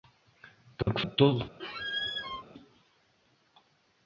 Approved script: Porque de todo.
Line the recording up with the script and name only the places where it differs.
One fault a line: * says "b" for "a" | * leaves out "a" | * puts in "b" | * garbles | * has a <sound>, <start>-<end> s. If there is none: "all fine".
* has a dropout, 0.8-0.9 s
* has a squeak, 1.6-2.4 s